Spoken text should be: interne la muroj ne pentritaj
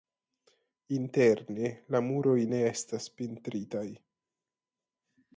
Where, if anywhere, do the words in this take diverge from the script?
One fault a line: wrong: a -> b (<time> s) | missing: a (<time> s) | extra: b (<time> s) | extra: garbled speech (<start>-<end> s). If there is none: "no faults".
extra: estas (2.7 s)